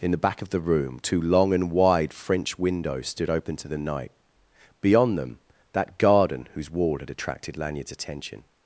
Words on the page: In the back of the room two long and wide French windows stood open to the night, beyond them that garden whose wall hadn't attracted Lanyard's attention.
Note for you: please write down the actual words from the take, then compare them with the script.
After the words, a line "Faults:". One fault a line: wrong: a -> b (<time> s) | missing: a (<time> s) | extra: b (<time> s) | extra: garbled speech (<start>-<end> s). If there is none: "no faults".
In the back of the room two long and wide French windows stood open to the night, beyond them that garden whose wall had attracted Lanyard's attention.
Faults:
wrong: hadn't -> had (7.0 s)